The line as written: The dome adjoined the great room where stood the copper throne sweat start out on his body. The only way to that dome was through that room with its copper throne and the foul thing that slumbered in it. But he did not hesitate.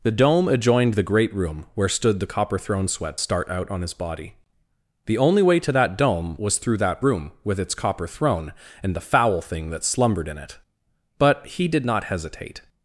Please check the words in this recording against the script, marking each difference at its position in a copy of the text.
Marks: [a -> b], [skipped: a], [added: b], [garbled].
The dome adjoined the great room where stood the copper throne sweat start out on his body. The only way to that dome was through that room with its copper throne and the foul thing that slumbered in it. But he did not hesitate.